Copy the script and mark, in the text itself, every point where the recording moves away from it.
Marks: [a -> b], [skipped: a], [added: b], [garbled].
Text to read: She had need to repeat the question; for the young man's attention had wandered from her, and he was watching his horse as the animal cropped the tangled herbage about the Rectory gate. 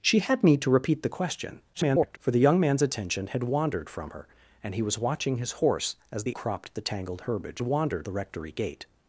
She had need to repeat the question; [garbled] for the young man's attention had wandered from her, and he was watching his horse as the [skipped: animal] cropped the tangled herbage [about -> wandered] the Rectory gate.